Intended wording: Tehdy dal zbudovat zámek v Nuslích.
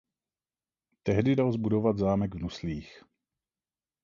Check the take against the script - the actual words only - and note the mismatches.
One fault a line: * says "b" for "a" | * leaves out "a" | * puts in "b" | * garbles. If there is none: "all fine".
all fine